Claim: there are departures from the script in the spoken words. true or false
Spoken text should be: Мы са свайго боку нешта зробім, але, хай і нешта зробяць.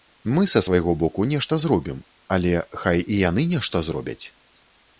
true